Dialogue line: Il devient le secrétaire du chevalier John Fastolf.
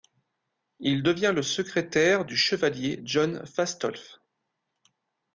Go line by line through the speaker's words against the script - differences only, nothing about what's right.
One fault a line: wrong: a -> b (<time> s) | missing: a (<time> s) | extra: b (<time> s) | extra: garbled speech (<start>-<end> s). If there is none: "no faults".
no faults